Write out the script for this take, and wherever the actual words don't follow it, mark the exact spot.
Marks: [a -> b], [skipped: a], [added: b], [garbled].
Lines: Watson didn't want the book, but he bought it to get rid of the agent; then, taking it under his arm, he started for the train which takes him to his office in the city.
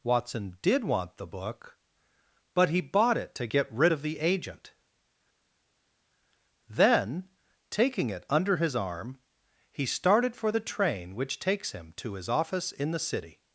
Watson [didn't -> did] want the book, but he bought it to get rid of the agent; then, taking it under his arm, he started for the train which takes him to his office in the city.